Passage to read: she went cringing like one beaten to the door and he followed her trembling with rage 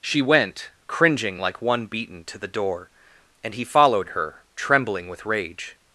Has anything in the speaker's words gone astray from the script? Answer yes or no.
no